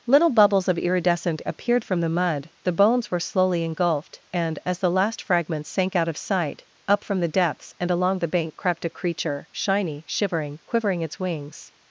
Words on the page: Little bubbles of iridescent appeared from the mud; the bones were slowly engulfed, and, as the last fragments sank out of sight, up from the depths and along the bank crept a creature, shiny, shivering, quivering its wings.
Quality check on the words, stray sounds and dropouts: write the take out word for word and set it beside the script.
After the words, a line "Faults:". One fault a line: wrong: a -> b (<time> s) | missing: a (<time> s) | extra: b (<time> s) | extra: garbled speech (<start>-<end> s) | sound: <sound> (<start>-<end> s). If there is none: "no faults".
Little bubbles of iridescent appeared from the mud; the bones were slowly engulfed, and, as the last fragments sank out of sight, up from the depths and along the bank crept a creature, shiny, shivering, quivering its wings.
Faults:
no faults